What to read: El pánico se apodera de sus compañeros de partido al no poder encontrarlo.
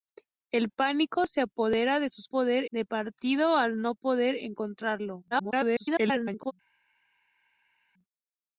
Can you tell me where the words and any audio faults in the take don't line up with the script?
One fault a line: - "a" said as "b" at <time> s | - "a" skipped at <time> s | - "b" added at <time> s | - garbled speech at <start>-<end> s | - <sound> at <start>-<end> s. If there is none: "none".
- "compañeros" said as "poder" at 2.2 s
- garbled speech at 5.3-6.5 s